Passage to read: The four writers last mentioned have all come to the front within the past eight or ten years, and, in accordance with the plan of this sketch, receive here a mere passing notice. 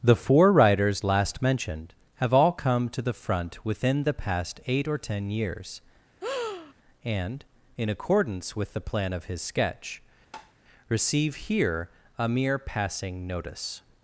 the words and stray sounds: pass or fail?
fail